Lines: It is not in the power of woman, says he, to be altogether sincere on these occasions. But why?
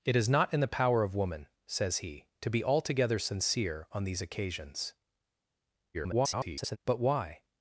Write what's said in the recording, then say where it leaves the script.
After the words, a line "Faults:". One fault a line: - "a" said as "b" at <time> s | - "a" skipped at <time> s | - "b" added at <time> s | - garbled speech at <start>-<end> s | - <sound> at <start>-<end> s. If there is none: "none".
It is not in the power of woman, says he, to be altogether sincere on these occasions. [garbled] But why?
Faults:
- garbled speech at 5.9-6.8 s